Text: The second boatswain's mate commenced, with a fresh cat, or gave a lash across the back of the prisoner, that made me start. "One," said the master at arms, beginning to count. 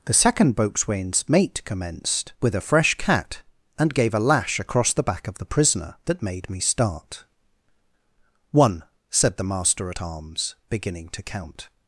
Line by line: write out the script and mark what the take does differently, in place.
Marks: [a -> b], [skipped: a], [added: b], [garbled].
The second boatswain's mate commenced, with a fresh cat, [or -> and] gave a lash across the back of the prisoner, that made me start. "One," said the master at arms, beginning to count.